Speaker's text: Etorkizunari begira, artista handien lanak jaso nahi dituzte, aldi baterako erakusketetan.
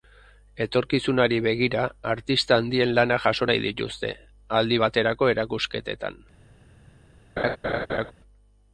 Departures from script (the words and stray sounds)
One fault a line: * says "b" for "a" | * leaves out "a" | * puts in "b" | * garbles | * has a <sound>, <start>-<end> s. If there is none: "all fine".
* has a laugh, 7.4-8.1 s